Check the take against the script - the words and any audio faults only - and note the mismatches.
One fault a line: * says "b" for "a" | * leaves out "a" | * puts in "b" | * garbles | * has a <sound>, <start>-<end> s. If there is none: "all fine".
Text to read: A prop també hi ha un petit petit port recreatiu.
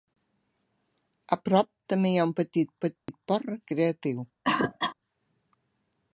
* has a dropout, 3.0-3.1 s
* has a cough, 4.4-5.0 s